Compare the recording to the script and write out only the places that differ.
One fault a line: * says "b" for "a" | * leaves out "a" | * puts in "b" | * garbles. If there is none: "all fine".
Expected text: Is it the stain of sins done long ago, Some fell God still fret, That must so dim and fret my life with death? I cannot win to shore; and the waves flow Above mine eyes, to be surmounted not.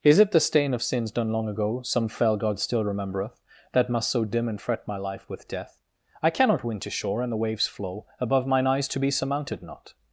* says "remembereth" for "fret"